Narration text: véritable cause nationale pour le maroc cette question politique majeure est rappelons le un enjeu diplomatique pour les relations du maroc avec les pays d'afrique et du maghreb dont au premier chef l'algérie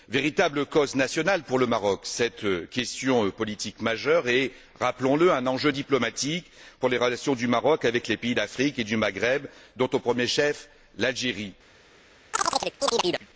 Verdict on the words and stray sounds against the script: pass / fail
fail